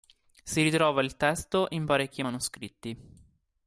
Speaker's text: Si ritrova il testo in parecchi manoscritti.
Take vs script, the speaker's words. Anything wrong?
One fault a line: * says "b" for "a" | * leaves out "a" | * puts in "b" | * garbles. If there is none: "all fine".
all fine